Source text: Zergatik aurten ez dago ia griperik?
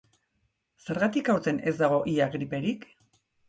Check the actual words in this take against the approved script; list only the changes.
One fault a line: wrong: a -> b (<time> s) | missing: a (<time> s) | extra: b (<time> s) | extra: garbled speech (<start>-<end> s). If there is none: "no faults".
no faults